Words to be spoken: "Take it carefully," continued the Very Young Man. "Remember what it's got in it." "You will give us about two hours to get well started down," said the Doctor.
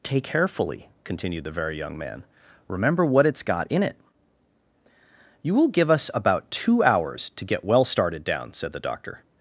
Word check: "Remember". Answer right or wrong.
right